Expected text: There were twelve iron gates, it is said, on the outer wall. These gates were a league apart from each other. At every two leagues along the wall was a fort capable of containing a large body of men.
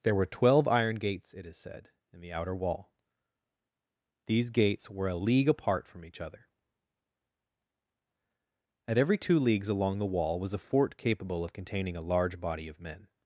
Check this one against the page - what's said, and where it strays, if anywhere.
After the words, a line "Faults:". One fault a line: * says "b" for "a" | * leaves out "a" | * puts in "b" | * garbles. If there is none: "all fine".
There were twelve iron gates, it is said, in the outer wall. These gates were a league apart from each other. At every two leagues along the wall was a fort capable of containing a large body of men.
Faults:
* says "in" for "on"